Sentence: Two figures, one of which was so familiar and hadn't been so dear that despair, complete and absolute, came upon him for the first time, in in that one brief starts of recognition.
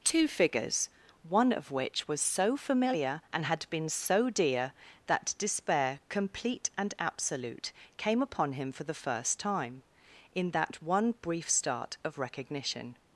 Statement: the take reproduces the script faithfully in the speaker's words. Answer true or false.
false